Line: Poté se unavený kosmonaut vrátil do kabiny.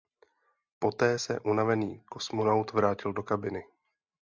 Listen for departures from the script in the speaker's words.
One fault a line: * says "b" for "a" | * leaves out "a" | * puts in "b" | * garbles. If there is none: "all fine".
all fine